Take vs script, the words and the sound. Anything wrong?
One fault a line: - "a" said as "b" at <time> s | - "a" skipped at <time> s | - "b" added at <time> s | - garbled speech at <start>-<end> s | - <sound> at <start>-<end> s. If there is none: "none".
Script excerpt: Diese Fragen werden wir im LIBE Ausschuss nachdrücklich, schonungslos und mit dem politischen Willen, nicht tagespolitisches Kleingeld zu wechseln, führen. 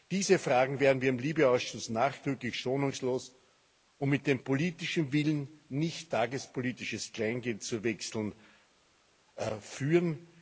none